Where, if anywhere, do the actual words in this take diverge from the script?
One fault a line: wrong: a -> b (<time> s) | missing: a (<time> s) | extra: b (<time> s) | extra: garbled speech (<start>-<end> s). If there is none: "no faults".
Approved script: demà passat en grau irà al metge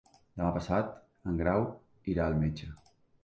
no faults